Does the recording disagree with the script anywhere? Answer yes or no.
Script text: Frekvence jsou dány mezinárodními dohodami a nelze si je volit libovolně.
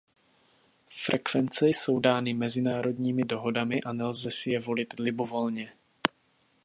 no